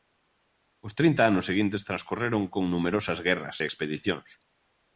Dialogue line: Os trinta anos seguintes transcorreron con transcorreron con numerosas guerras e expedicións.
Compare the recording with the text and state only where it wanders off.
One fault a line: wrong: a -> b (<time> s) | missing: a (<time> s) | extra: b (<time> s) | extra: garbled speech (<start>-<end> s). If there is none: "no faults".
missing: transcorreron con (2.6 s)